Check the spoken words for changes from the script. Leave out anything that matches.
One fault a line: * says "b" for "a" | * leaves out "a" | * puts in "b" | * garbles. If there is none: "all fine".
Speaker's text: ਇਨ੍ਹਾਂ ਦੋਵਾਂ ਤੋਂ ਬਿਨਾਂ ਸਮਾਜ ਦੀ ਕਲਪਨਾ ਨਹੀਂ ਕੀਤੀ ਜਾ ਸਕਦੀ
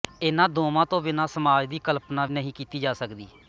all fine